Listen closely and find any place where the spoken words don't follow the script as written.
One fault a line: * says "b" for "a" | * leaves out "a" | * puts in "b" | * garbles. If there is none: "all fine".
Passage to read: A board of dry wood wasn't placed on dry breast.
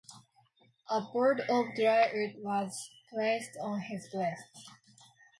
* says "was" for "wasn't"
* says "his" for "dry"